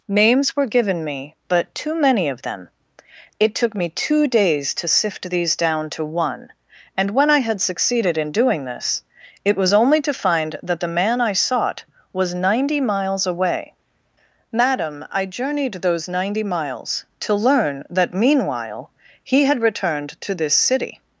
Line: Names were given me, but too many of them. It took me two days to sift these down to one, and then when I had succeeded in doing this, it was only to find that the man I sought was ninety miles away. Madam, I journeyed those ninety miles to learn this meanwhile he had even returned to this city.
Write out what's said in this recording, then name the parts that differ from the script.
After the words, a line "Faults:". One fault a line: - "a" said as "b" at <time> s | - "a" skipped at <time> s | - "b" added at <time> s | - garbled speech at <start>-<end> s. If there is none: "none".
Names were given me, but too many of them. It took me two days to sift these down to one, and when I had succeeded in doing this, it was only to find that the man I sought was ninety miles away. Madam, I journeyed those ninety miles to learn that meanwhile he had returned to this city.
Faults:
- "then" skipped at 7.1 s
- "this" said as "that" at 17.9 s
- "even" skipped at 19.6 s